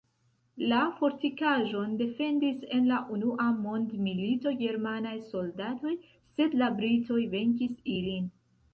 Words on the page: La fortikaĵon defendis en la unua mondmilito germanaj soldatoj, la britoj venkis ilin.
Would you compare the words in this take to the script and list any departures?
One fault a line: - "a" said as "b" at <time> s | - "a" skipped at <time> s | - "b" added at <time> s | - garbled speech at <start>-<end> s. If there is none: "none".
- "sed" added at 6.3 s